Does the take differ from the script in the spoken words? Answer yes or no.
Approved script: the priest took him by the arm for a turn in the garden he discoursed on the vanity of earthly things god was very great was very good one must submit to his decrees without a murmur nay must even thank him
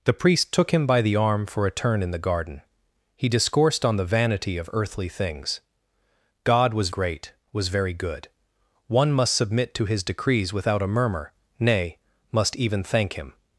yes